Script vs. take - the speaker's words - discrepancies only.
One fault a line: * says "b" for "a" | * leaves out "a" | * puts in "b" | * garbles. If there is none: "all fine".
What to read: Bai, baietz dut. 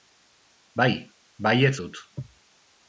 all fine